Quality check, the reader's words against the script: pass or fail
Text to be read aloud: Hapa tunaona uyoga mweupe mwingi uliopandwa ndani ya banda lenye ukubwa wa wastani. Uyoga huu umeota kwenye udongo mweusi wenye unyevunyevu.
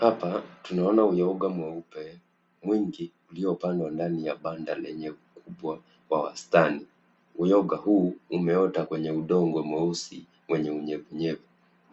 pass